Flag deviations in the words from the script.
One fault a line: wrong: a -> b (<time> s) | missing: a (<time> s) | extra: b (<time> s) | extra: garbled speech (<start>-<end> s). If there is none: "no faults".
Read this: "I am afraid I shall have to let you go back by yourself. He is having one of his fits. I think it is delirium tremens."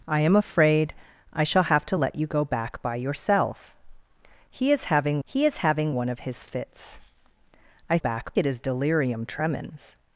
extra: he is having (5.2 s)
wrong: think -> back (8.0 s)